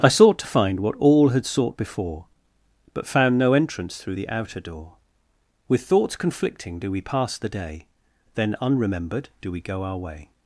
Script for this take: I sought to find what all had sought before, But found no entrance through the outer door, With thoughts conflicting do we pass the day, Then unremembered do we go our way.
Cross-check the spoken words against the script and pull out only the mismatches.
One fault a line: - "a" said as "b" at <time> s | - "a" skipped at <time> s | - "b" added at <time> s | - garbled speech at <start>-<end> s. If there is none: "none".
none